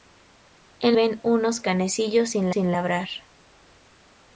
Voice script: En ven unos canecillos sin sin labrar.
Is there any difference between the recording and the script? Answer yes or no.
no